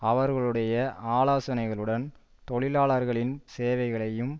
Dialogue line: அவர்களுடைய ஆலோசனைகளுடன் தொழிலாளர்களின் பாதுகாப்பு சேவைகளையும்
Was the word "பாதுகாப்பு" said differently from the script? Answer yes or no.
yes